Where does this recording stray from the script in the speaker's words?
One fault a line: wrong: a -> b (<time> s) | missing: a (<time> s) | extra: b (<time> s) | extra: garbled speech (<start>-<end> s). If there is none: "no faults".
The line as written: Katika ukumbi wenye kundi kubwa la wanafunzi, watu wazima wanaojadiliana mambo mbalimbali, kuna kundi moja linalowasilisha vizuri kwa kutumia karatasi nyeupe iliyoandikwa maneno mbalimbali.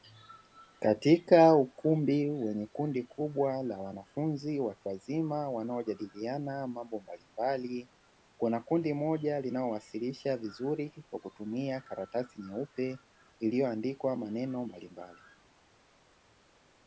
no faults